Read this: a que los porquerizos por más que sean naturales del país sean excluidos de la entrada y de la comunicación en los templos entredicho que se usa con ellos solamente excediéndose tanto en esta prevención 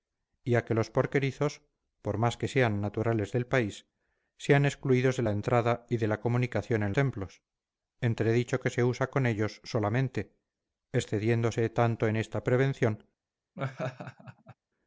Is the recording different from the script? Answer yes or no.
yes